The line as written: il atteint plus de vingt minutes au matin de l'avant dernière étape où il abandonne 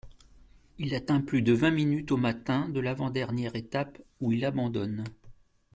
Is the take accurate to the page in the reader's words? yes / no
yes